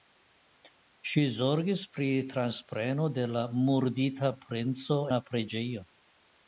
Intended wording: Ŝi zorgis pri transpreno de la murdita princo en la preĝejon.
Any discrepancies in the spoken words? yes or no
yes